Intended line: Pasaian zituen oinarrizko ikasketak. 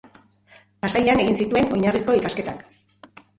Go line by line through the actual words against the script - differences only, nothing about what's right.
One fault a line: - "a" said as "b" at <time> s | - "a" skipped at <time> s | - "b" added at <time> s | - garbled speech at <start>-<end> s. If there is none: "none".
- "egin" added at 1.2 s